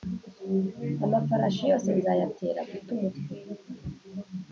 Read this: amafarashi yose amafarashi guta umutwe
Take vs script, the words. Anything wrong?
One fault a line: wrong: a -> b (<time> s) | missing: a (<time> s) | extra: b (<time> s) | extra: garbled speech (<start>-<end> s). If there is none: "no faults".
wrong: amafarashi -> nzayatera (2.0 s)